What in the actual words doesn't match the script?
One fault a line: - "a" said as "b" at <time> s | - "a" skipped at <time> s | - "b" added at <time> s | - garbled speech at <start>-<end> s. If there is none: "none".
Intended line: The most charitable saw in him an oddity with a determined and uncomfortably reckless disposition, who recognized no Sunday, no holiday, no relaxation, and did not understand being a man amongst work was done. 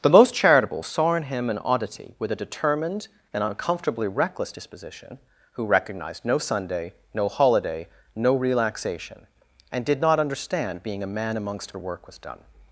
none